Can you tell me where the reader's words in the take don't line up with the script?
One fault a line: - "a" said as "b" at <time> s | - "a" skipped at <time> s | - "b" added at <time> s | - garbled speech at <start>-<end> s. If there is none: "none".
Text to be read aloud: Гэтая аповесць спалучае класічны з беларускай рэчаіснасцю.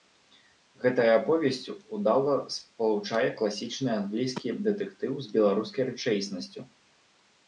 - "удала" added at 2.0 s
- "англійскі дэтэктыў" added at 4.0 s